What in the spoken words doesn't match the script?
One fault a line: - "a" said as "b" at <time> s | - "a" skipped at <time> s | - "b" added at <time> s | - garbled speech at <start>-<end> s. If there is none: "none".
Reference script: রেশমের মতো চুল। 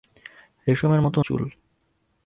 none